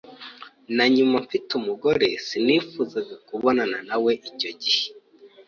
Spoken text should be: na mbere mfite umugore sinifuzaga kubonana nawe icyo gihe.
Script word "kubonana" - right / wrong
right